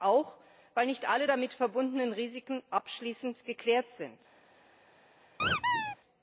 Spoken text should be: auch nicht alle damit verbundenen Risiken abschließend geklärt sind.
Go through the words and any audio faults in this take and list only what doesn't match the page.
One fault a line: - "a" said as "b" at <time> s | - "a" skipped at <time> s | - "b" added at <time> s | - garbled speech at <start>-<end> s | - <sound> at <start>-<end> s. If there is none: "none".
- "weil" added at 0.7 s
- squeak at 5.4-6.0 s